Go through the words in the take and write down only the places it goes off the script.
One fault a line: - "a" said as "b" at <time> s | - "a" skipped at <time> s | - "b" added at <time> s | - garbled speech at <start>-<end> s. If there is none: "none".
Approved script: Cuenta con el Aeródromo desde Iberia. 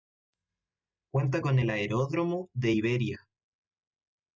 - "desde" said as "de" at 2.5 s